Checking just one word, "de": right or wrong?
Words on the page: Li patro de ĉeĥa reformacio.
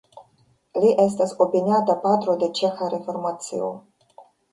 right